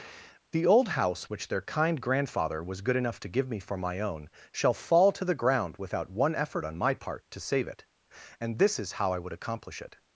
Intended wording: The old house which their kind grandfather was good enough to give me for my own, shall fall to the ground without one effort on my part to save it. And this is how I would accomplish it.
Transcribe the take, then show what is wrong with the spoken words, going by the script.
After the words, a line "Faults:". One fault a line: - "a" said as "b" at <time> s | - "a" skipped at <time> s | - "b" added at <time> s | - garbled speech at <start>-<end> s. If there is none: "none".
The old house which their kind grandfather was good enough to give me for my own, shall fall to the ground without one effort on my part to save it. And this is how I would accomplish it.
Faults:
none